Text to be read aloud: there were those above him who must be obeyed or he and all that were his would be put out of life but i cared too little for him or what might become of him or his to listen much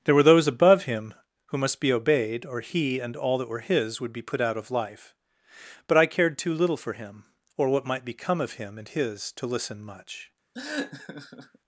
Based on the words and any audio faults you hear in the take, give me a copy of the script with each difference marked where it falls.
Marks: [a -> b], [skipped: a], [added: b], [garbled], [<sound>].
there were those above him who must be obeyed or he and all that were his would be put out of life but i cared too little for him or what might become of him [or -> and] his to listen much [laugh]